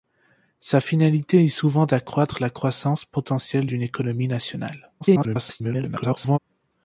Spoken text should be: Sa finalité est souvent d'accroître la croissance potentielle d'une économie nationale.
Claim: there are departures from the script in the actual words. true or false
true